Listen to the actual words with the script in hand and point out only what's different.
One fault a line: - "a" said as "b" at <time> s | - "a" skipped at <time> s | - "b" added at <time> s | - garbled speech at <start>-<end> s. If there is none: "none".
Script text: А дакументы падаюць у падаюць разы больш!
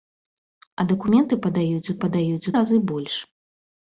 none